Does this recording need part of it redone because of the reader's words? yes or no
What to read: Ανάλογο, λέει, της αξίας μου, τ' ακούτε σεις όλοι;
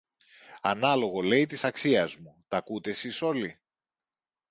no